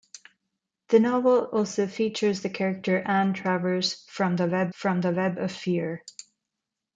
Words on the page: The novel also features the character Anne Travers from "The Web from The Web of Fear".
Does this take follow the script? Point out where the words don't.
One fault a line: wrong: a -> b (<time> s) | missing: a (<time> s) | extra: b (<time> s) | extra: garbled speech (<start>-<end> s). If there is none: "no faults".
no faults